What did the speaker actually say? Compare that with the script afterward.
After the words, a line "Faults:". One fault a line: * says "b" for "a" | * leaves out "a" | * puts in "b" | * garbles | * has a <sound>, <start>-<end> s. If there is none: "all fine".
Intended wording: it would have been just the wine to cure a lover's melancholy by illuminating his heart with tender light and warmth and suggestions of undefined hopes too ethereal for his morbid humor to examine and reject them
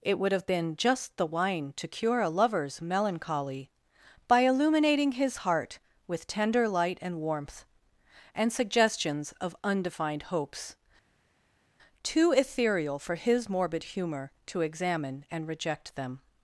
it would have been just the wine to cure a lover's melancholy by illuminating his heart with tender light and warmth and suggestions of undefined hopes too ethereal for his morbid humor to examine and reject them
Faults:
all fine